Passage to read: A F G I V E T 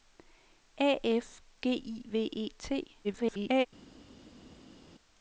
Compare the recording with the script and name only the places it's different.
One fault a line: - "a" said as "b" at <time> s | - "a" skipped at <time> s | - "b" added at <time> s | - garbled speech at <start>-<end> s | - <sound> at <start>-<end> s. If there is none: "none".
- garbled speech at 3.0-3.7 s